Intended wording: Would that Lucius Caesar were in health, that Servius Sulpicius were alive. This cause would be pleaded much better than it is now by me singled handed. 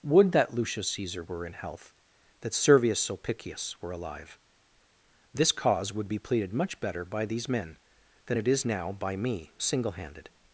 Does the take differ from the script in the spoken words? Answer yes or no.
yes